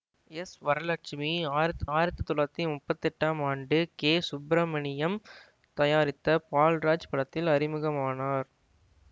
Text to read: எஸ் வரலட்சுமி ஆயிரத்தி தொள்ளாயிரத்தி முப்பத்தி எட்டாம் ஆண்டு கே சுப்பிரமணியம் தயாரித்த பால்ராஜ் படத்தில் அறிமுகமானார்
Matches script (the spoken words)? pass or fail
fail